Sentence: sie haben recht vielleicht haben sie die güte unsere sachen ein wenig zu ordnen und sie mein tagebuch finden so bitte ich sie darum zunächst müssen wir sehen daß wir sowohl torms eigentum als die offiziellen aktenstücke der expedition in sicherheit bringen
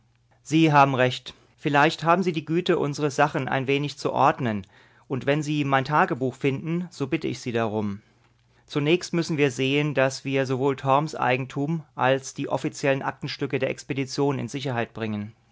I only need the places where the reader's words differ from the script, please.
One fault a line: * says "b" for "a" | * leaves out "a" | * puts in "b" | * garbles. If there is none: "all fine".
* puts in "wenn"